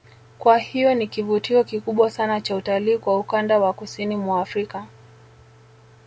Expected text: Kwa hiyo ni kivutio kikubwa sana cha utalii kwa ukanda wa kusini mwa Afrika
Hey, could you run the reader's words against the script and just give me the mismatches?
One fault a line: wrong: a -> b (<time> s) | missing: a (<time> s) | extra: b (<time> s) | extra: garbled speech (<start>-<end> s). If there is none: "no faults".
no faults